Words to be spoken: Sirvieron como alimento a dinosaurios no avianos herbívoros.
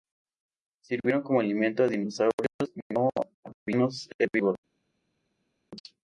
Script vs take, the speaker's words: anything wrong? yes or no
no